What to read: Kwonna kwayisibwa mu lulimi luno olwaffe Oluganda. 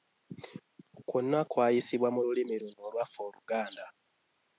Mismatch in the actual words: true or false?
false